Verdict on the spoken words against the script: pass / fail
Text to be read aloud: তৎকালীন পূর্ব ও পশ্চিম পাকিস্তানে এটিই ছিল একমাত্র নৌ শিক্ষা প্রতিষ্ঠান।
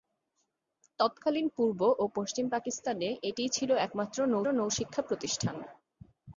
fail